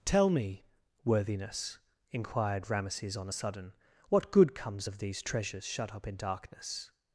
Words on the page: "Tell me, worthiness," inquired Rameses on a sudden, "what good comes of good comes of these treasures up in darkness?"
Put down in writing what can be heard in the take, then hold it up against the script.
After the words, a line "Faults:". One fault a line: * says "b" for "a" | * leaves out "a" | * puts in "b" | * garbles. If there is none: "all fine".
"Tell me, worthiness," inquired Rameses on a sudden, "what good comes of these treasures shut up in darkness?"
Faults:
* leaves out "good comes of"
* puts in "shut"